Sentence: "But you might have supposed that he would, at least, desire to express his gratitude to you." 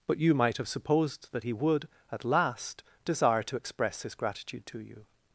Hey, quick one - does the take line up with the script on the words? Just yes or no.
no